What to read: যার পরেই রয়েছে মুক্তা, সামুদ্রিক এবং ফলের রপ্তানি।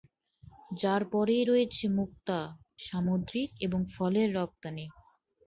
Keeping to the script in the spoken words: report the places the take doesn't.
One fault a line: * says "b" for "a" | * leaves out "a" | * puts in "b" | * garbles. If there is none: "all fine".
all fine